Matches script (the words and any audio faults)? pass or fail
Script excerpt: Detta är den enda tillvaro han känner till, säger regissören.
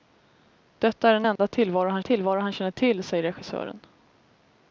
fail